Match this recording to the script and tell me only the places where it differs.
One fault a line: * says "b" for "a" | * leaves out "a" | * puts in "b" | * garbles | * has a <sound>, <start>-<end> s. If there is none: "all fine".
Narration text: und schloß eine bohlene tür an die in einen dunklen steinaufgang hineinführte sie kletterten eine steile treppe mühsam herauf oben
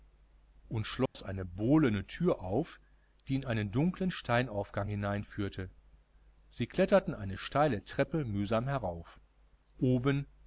* has a dropout, 1.1-1.2 s
* says "auf" for "an"